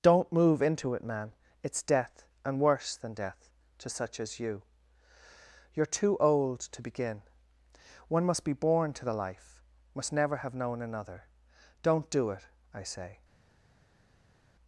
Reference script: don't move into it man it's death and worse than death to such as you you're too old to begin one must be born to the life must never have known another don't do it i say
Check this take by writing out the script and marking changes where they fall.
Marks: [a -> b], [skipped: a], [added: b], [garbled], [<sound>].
don't move into it man it's death and worse than death to such as you you're too old to begin one must be born to the life must never have known another don't do it i say